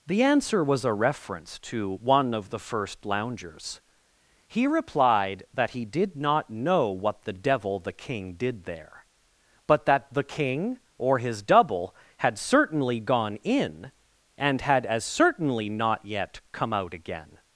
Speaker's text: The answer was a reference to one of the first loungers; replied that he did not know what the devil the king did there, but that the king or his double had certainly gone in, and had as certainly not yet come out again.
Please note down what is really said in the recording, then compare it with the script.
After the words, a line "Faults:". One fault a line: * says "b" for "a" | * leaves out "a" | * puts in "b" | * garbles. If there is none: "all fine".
The answer was a reference to one of the first loungers; he replied that he did not know what the devil the king did there, but that the king or his double had certainly gone in, and had as certainly not yet come out again.
Faults:
* puts in "he"